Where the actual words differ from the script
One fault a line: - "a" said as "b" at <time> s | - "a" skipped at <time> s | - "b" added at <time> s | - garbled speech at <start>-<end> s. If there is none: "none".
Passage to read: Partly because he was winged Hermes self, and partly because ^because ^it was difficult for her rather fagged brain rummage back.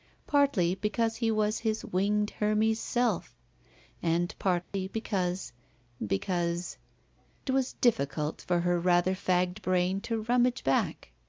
- "his" added at 1.6 s
- "to" added at 10.0 s